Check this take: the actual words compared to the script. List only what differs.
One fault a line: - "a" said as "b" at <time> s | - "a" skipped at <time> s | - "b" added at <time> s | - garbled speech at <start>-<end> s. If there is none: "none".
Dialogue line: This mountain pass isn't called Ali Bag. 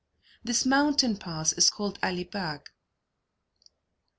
- "isn't" said as "is" at 1.5 s